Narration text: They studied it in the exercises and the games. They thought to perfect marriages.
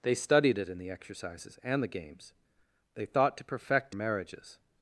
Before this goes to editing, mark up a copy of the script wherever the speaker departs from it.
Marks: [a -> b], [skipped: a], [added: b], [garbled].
They studied it in the exercises and the games. They thought to perfect marriages.